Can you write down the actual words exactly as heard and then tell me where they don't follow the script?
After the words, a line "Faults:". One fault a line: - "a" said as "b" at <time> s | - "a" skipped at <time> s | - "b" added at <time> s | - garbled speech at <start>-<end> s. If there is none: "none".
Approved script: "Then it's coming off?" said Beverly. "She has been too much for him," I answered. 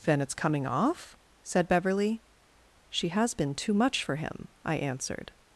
"Then it's coming off?" said Beverly. "She has been too much for him," I answered.
Faults:
none